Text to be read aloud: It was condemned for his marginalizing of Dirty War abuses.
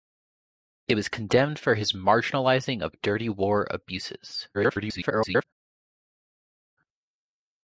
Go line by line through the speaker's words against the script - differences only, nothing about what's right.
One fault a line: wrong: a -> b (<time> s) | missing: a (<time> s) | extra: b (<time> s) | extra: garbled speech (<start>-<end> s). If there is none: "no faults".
extra: garbled speech (4.5-5.4 s)